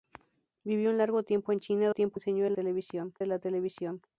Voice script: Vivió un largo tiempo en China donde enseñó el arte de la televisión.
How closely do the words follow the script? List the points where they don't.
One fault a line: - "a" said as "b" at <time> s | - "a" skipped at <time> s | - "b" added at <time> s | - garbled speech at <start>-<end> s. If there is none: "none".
- "donde" said as "tiempo" at 1.9 s
- "arte" said as "televisión" at 2.5 s